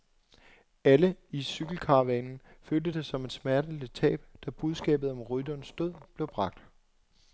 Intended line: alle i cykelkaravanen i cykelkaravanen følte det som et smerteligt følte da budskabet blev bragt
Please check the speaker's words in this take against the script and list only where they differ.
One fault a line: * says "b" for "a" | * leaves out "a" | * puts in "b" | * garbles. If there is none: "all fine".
* leaves out "i cykelkaravanen"
* says "tab" for "følte"
* puts in "om rytterens død"